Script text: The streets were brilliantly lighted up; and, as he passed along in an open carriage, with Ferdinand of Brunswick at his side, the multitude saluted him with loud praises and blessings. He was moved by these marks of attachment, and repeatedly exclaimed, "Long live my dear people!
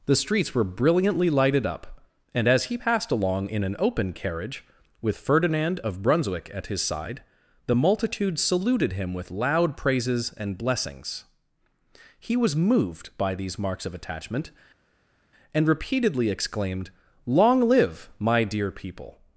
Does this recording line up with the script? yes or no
yes